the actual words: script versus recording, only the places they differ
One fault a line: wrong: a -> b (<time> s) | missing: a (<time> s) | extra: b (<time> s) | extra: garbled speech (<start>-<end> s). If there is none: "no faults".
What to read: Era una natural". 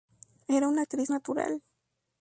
extra: actriz (0.8 s)